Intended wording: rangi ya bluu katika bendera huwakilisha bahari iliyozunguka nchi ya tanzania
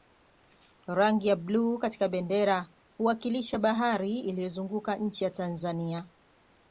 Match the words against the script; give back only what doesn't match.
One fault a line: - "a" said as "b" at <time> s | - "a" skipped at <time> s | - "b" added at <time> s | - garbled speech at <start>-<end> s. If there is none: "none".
none